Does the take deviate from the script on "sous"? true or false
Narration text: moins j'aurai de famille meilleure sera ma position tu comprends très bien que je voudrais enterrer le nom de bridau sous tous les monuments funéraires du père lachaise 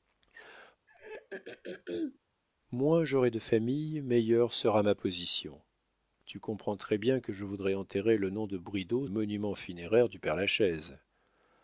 true